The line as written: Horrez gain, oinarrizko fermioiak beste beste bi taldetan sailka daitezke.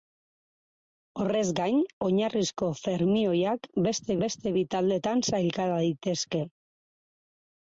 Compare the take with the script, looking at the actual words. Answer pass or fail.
pass